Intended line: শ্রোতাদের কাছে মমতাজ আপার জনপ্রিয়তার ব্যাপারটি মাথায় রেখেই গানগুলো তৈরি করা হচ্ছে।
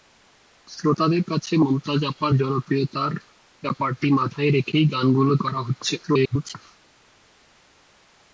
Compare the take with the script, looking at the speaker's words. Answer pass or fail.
fail